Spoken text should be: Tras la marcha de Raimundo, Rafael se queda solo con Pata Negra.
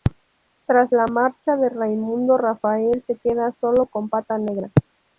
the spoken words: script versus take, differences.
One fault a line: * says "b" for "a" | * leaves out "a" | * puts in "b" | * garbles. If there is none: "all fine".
all fine